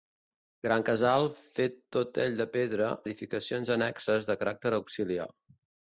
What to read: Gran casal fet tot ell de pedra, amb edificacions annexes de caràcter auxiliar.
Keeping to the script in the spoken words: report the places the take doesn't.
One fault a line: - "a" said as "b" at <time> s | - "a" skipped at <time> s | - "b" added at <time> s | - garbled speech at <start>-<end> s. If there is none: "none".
- "amb" skipped at 2.9 s